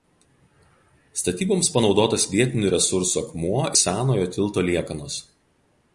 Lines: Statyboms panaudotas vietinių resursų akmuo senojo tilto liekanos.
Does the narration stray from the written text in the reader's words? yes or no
no